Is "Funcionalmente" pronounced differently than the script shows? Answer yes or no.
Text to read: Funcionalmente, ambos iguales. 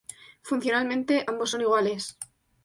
no